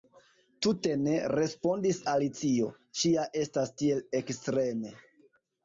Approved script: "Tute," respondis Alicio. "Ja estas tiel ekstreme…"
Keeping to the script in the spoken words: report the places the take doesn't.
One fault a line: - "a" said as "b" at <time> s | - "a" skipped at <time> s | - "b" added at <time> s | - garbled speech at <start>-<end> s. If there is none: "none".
- "ne" added at 1.0 s
- "Ŝi" added at 3.0 s